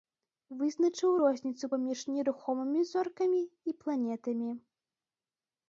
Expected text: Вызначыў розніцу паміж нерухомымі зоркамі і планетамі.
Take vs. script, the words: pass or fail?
pass